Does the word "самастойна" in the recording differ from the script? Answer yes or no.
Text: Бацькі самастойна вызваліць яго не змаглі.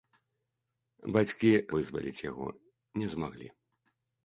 yes